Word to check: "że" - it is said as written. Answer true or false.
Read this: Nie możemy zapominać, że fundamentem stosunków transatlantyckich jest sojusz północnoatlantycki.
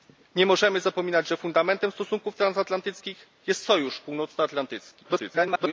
true